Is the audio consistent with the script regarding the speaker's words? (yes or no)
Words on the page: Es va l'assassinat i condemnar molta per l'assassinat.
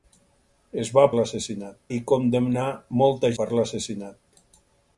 yes